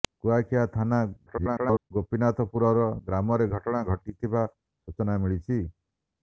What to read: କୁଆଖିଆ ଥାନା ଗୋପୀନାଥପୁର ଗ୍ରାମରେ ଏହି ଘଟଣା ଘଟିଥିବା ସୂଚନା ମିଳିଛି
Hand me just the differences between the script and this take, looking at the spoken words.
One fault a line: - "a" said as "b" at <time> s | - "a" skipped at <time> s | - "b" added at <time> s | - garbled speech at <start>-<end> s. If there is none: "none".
- garbled speech at 1.3-1.9 s
- "ଏହି" skipped at 3.5 s